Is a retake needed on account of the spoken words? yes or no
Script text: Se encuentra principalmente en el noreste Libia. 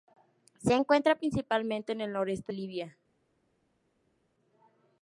no